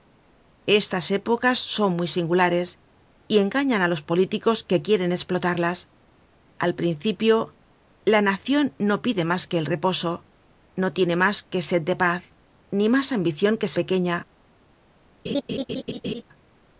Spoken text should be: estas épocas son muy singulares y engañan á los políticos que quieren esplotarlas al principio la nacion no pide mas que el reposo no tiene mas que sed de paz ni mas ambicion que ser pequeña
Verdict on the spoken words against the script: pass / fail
fail